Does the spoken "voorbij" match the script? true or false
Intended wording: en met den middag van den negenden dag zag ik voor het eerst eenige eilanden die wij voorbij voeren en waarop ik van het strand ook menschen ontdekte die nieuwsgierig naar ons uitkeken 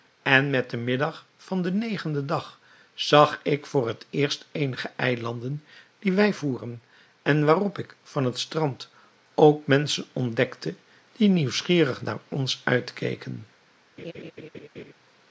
false